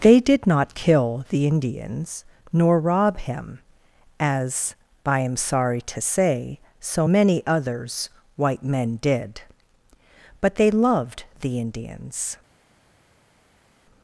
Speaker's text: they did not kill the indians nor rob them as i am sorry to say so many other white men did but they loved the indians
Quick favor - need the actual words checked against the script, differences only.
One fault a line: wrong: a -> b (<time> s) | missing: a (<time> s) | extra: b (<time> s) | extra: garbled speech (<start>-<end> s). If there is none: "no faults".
wrong: them -> him (3.2 s)
wrong: other -> others (7.5 s)